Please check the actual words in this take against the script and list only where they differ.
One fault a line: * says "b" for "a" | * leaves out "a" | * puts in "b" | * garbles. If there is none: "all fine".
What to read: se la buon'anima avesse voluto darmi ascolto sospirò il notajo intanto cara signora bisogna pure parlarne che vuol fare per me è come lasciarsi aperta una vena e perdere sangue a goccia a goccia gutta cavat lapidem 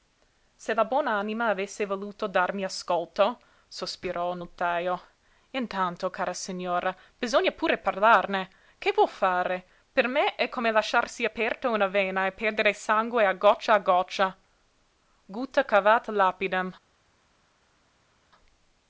all fine